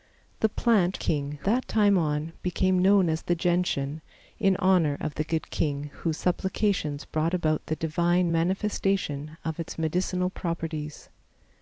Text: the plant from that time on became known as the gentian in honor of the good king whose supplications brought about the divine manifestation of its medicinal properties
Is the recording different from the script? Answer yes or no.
yes